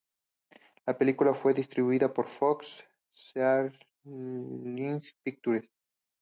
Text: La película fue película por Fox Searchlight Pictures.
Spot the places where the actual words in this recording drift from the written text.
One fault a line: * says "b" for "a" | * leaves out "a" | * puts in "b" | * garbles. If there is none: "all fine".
* says "distribuida" for "película"